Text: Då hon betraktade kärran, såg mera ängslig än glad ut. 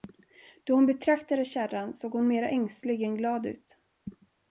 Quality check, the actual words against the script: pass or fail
fail